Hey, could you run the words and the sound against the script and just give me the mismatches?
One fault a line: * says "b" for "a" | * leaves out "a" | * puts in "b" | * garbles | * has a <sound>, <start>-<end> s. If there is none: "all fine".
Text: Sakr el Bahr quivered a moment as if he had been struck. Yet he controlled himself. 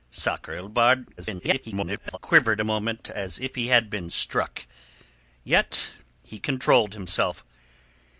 * garbles